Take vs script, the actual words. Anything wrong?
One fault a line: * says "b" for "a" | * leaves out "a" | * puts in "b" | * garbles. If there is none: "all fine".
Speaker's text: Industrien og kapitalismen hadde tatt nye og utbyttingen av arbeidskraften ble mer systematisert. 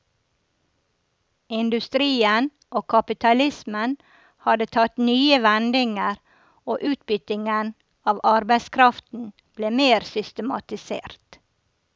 * puts in "vendinger"